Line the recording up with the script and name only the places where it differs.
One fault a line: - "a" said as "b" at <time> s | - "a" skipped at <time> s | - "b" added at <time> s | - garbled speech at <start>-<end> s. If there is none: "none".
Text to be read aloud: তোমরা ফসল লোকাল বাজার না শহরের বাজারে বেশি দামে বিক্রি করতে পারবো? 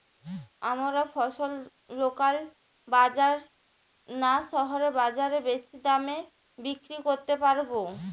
- "তোমরা" said as "আমরা" at 0.7 s